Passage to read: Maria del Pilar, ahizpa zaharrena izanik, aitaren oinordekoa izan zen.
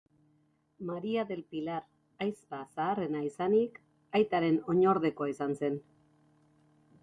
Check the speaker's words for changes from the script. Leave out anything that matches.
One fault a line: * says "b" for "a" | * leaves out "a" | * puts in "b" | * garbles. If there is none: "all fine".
all fine